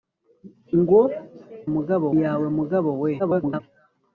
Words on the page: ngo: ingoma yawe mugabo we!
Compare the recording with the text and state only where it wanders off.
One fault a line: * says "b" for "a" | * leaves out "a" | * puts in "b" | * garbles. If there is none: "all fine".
* says "mugabo" for "ingoma"
* garbles